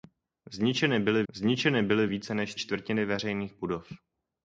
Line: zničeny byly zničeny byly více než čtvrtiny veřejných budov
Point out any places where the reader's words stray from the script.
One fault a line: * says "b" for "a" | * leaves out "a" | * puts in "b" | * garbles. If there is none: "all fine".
all fine